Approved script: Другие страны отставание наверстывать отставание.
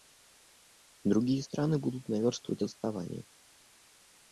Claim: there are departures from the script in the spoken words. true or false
true